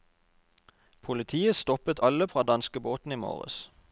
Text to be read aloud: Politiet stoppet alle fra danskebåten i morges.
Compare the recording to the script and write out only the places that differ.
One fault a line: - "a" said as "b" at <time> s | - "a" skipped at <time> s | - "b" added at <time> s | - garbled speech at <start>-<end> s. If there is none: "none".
none